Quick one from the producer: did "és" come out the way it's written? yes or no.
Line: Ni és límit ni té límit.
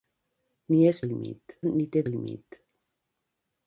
yes